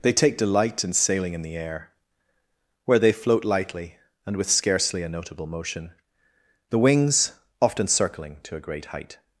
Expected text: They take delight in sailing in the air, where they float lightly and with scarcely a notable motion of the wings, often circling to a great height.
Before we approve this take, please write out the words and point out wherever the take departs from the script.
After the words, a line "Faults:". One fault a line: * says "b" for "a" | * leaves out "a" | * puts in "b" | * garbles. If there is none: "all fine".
They take delight in sailing in the air, where they float lightly and with scarcely a notable motion the wings, often circling to a great height.
Faults:
* leaves out "of"